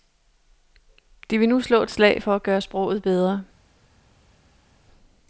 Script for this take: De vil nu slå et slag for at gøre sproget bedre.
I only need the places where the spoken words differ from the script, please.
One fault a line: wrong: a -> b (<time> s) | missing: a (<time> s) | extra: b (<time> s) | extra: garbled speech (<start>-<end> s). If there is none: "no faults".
no faults